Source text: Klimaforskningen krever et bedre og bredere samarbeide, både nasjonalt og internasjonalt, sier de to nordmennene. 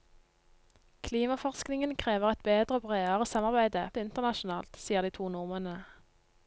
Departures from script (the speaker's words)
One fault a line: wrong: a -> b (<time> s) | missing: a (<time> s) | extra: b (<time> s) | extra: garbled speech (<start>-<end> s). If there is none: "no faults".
missing: både nasjonalt (3.9 s)